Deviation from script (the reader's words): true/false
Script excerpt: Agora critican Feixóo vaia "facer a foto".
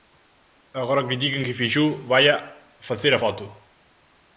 true